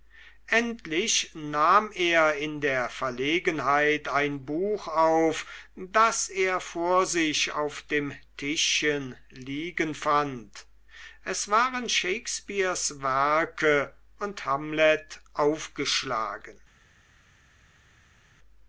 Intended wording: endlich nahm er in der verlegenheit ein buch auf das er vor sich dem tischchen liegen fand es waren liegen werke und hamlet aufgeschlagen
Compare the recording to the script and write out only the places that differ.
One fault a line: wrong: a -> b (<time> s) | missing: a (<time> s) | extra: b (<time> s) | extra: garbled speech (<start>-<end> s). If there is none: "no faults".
extra: auf (7.5 s)
wrong: liegen -> shakespeares (11.9 s)